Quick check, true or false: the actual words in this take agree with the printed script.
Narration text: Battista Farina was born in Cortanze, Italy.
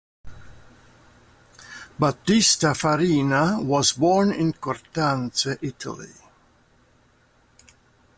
true